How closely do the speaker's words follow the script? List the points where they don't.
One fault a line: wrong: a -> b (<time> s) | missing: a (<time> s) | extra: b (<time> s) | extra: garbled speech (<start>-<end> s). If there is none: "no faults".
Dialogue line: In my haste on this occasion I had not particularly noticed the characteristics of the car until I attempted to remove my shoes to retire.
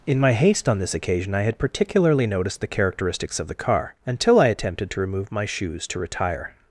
missing: not (1.6 s)